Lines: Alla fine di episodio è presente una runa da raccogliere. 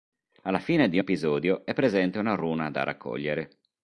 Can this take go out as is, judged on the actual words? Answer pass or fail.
pass